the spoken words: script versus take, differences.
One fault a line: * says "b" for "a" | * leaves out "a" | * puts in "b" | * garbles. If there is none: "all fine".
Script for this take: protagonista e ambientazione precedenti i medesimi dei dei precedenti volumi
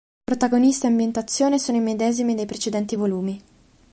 * says "sono" for "precedenti"
* leaves out "dei"